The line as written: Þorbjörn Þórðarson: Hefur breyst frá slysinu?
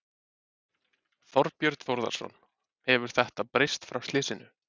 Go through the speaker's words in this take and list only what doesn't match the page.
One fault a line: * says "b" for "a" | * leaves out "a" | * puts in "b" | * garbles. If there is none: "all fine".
* puts in "þetta"